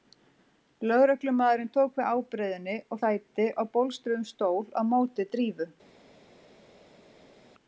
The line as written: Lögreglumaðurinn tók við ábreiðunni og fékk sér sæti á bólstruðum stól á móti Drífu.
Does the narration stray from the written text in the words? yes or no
yes